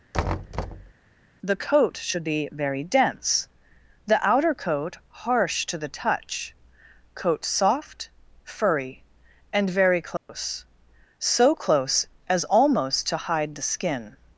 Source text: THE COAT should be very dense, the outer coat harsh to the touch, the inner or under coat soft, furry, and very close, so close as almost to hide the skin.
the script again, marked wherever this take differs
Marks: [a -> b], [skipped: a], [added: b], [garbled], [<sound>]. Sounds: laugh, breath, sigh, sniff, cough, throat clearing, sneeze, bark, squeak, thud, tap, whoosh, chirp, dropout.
[thud] THE COAT should be very dense, the outer coat harsh to the touch, [skipped: the inner or under] coat soft, furry, and very close, [dropout] so close as almost to hide the skin.